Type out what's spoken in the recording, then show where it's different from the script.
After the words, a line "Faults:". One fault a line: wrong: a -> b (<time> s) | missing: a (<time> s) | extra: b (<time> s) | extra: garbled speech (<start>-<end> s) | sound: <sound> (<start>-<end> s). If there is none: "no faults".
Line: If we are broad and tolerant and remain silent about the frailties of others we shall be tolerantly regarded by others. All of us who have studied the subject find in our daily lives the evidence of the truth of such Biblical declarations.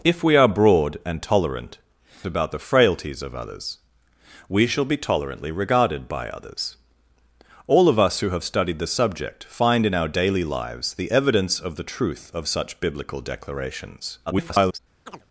If we are broad and tolerant about the frailties of others we shall be tolerantly regarded by others. All of us who have studied the subject find in our daily lives the evidence of the truth of such Biblical declarations. [garbled]
Faults:
missing: and remain silent (1.8 s)
extra: garbled speech (14.3-14.8 s)
sound: chirp (15.1-15.3 s)